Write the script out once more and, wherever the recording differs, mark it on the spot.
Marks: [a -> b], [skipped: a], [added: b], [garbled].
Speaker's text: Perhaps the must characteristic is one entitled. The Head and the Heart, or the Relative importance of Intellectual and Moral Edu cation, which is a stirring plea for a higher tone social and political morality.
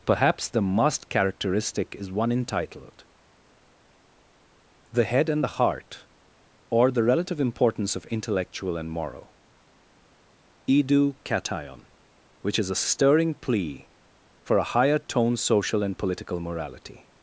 Perhaps the must characteristic is one entitled. The Head and the Heart, or the Relative importance of Intellectual and Moral Edu cation, which is a stirring plea for a higher tone social and political morality.